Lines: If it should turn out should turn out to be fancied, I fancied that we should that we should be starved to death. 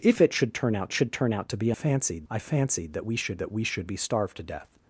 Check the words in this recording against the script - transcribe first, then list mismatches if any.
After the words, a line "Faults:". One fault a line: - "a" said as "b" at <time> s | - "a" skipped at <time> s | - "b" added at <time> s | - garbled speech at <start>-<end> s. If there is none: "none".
If it should turn out should turn out to be fancied, I fancied that we should that we should be starved to death.
Faults:
none